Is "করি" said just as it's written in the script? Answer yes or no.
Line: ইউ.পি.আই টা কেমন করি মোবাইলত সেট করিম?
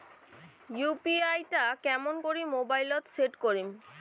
yes